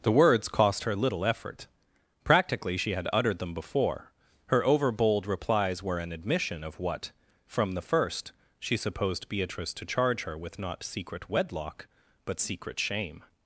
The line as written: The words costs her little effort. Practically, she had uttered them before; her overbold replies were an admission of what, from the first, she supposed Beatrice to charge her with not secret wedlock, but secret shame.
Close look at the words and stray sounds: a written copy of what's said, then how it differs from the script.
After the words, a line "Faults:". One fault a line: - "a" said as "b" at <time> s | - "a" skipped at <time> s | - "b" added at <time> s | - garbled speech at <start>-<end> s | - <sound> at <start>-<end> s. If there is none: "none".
The words cost her little effort. Practically, she had uttered them before; her overbold replies were an admission of what, from the first, she supposed Beatrice to charge her with not secret wedlock, but secret shame.
Faults:
- "costs" said as "cost" at 0.5 s